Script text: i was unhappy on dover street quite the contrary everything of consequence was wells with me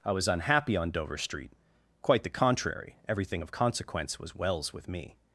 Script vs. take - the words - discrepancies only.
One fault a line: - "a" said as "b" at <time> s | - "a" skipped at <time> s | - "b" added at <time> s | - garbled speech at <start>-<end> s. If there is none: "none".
none